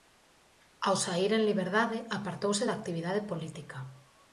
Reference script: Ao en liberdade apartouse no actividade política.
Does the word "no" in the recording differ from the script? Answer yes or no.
yes